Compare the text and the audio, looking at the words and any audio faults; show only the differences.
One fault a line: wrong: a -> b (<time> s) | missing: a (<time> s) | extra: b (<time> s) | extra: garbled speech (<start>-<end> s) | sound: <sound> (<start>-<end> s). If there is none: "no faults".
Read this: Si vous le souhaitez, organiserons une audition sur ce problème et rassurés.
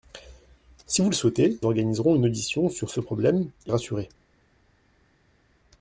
no faults